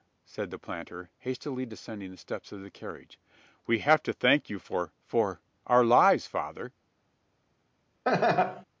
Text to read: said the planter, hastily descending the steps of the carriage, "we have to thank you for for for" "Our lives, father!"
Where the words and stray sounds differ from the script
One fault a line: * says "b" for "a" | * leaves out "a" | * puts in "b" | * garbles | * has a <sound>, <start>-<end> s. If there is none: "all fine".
* leaves out "for"
* has a laugh, 8.1-8.7 s